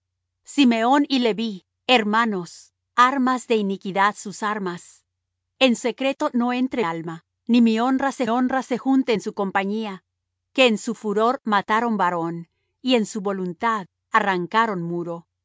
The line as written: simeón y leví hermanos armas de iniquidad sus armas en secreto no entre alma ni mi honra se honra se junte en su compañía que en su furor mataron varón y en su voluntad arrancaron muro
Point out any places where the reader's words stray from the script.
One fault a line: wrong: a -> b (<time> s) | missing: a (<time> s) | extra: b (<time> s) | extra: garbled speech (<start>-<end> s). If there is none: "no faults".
no faults